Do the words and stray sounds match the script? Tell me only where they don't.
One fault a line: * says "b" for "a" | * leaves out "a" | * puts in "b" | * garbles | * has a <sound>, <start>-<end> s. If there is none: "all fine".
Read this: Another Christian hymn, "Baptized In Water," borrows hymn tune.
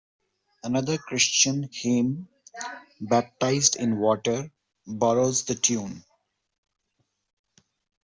* says "the" for "hymn"